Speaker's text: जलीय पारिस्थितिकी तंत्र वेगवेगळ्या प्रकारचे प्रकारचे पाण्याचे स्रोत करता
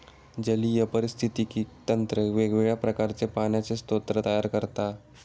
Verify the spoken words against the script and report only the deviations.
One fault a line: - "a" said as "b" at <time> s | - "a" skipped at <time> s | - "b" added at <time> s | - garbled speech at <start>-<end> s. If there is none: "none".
- "प्रकारचे" skipped at 3.3 s
- "तयार" added at 4.2 s